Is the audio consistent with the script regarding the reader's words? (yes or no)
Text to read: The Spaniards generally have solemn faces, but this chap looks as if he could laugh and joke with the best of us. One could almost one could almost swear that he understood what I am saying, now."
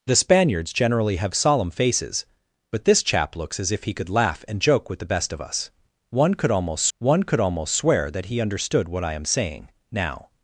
yes